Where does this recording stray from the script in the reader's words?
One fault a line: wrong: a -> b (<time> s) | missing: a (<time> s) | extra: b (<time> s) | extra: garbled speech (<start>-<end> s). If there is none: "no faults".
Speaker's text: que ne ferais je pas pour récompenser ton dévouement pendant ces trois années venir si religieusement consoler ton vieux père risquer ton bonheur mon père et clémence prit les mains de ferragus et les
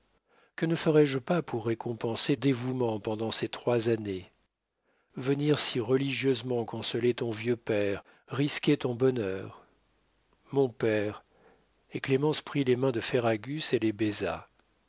missing: ton (2.4 s)